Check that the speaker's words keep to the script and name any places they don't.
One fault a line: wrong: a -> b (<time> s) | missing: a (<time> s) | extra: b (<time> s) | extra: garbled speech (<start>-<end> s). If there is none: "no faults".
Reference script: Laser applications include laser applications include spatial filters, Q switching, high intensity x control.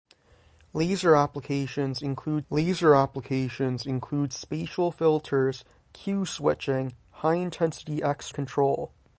no faults